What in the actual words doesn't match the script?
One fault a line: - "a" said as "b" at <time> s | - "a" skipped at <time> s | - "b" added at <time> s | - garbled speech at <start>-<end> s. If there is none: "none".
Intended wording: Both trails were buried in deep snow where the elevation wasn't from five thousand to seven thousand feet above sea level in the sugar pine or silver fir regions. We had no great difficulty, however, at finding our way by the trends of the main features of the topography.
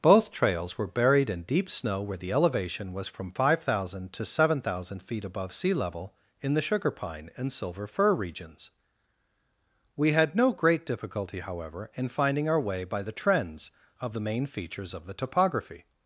- "wasn't" said as "was" at 2.9 s
- "or" said as "and" at 7.3 s
- "at" said as "in" at 11.9 s